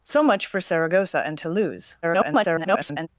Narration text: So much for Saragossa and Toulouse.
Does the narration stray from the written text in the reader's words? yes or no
yes